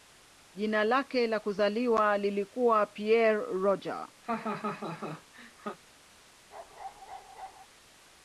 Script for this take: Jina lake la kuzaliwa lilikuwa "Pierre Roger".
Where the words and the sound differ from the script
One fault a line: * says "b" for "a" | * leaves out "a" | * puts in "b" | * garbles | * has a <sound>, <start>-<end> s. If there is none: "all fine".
* has a laugh, 4.2-5.8 s
* has a bark, 6.5-7.7 s